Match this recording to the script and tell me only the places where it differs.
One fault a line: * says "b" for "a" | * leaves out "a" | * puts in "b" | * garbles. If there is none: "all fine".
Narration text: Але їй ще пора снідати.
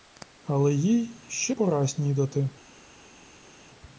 all fine